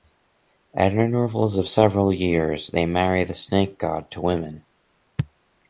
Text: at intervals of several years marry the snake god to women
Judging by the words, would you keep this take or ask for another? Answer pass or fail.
fail